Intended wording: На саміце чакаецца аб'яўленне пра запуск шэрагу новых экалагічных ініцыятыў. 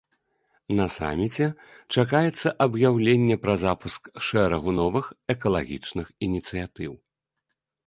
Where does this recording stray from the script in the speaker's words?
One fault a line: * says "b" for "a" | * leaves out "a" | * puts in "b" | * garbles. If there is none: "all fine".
all fine